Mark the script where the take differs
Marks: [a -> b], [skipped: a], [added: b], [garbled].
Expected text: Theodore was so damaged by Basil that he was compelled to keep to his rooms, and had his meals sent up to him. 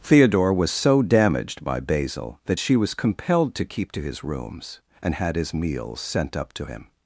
Theodore was so damaged by Basil that [he -> she] was compelled to keep to his rooms, and had his meals sent up to him.